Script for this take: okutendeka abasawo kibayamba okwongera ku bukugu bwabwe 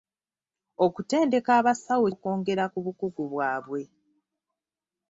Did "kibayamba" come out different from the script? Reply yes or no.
yes